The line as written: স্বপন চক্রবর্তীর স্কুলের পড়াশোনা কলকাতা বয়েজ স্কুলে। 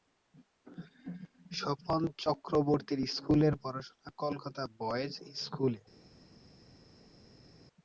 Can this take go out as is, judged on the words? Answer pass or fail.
pass